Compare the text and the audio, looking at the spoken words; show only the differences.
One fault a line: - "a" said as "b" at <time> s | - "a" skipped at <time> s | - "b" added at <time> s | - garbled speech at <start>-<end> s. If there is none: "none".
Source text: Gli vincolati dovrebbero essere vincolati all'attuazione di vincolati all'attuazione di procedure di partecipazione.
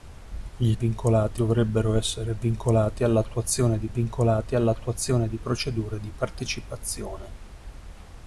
none